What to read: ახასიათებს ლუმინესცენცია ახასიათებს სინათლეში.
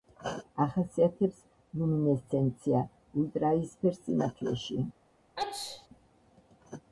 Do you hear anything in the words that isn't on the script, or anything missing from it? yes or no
yes